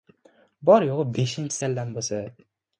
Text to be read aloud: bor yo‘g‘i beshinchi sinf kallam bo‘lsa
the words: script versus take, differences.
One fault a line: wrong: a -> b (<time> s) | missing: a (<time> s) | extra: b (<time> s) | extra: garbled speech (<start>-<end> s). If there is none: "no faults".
missing: sinf (1.6 s)